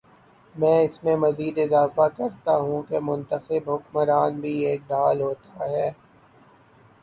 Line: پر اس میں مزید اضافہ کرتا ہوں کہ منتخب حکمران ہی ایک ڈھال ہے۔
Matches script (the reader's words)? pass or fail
fail